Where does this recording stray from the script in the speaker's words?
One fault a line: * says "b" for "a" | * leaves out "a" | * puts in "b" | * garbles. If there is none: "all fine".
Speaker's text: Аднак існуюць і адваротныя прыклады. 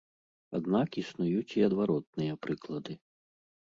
all fine